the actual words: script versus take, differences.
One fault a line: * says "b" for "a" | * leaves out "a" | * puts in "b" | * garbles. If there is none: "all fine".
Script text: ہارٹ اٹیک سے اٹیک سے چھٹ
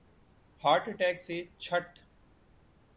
* leaves out "اٹیک سے"